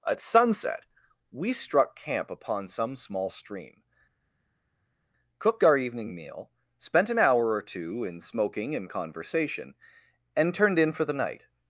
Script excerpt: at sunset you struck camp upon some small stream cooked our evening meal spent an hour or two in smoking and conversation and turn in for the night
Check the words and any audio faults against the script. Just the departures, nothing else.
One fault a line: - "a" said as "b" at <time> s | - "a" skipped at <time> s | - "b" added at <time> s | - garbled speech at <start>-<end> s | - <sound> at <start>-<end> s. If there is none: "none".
- "you" said as "we" at 1.3 s
- "turn" said as "turned" at 10.5 s